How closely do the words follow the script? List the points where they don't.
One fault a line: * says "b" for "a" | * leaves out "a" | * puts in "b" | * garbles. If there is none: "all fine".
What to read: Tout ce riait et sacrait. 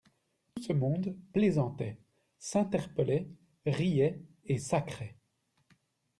* puts in "monde plaisantait s'interpellait"